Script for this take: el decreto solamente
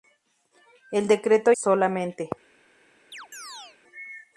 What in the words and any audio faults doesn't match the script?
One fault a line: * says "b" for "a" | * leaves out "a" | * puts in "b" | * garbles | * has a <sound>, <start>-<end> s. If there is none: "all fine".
* has a chirp, 3.1-3.8 s